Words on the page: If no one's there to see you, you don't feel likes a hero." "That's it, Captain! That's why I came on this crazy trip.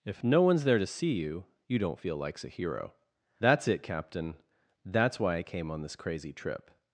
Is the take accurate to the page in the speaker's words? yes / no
yes